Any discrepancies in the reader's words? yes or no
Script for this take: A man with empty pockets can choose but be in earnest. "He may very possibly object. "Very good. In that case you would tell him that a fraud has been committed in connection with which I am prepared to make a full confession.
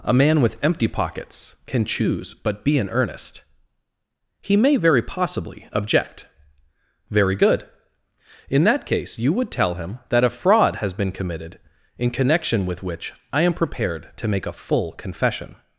no